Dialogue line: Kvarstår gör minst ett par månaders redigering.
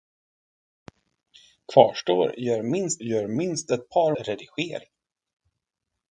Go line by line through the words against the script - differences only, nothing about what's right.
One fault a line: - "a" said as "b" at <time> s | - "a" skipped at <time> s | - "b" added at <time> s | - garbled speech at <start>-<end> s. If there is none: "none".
- "gör minst" added at 3.0 s
- "månaders" skipped at 4.2 s